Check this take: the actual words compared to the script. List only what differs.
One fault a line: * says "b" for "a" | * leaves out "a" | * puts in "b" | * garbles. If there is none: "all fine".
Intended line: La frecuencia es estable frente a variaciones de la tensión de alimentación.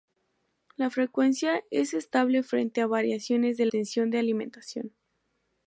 * leaves out "la"